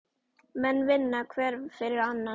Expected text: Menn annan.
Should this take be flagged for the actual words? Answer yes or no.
yes